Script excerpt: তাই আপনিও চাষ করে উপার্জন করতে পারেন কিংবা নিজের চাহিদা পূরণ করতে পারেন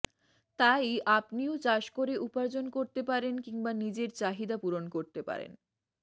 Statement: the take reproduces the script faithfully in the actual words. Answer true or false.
true